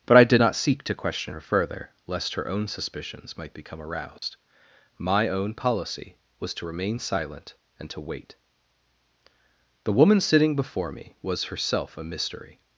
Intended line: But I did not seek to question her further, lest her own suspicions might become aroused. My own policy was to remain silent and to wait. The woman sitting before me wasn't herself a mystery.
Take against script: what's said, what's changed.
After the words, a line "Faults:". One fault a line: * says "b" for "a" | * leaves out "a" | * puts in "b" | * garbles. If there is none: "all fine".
But I did not seek to question her further, lest her own suspicions might become aroused. My own policy was to remain silent and to wait. The woman sitting before me was herself a mystery.
Faults:
* says "was" for "wasn't"